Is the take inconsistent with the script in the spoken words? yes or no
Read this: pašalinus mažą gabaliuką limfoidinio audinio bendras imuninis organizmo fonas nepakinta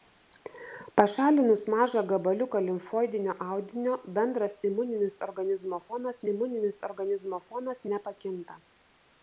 yes